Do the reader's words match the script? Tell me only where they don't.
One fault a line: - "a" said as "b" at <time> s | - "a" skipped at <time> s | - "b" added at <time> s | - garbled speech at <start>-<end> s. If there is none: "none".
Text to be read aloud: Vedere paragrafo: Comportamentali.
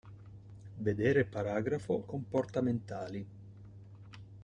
none